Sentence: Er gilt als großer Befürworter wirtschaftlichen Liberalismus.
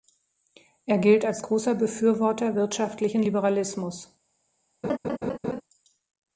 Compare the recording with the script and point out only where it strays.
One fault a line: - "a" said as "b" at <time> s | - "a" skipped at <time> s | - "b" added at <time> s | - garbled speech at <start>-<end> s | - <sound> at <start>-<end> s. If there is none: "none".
- laugh at 4.8-5.6 s